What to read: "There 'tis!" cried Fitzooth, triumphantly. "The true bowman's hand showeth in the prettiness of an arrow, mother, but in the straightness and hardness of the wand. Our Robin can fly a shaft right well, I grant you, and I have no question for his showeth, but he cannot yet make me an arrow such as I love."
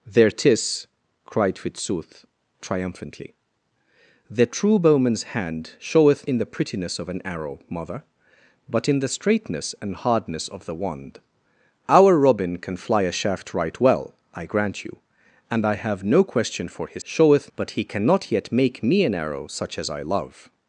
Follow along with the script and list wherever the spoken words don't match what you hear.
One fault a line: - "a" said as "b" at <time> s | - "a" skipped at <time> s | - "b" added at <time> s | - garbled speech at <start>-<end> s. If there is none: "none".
none